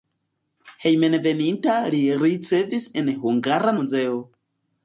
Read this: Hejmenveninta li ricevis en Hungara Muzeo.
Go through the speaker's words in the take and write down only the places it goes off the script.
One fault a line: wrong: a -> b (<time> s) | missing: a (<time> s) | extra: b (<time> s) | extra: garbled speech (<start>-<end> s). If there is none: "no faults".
no faults